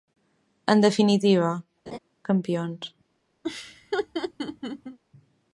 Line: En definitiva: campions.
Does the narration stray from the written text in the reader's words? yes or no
no